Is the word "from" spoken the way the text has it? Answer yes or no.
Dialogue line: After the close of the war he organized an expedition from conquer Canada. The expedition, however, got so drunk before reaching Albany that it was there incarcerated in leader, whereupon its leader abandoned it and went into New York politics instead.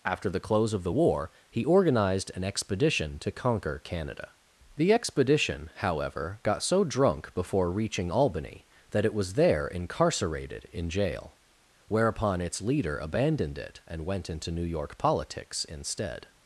no